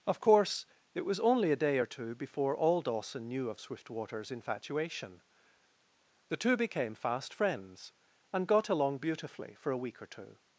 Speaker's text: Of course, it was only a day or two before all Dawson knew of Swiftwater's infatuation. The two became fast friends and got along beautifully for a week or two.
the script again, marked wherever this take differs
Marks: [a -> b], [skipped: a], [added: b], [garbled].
Of course, it was only a day or two before all Dawson knew of Swiftwater's infatuation. The two became fast friends and got along beautifully for a week or two.